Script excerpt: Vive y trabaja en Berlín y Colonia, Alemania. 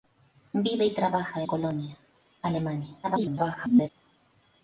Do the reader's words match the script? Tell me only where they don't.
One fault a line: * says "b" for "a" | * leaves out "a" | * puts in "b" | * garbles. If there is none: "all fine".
* leaves out "en Berlín y"
* garbles